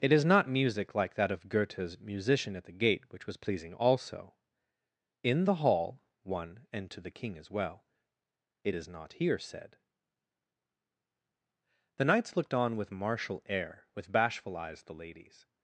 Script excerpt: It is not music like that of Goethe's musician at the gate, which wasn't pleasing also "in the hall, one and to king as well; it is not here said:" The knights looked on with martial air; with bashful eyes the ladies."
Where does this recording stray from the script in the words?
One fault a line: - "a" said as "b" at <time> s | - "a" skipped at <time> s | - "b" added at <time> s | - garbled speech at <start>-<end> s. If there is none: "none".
- "wasn't" said as "was" at 3.3 s
- "the" added at 7.0 s